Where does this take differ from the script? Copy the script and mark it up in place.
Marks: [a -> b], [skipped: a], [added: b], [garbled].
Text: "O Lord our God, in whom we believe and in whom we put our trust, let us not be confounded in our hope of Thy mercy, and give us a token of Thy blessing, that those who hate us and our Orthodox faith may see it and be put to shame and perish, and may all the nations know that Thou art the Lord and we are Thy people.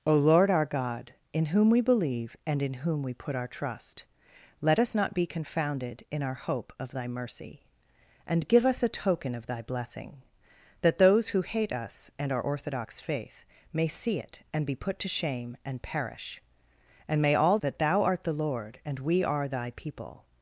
"O Lord our God, in whom we believe and in whom we put our trust, let us not be confounded in our hope of Thy mercy, and give us a token of Thy blessing, that those who hate us and our Orthodox faith may see it and be put to shame and perish, and may all [skipped: the nations know] that Thou art the Lord and we are Thy people.